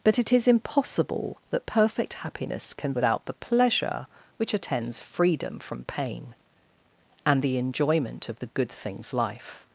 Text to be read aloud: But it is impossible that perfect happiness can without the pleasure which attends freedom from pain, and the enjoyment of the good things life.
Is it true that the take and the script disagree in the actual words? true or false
false